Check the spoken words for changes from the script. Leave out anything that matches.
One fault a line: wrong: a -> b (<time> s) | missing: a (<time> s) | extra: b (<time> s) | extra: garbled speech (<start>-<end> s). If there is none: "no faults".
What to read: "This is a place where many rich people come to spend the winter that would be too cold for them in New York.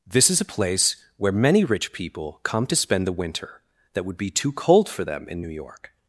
no faults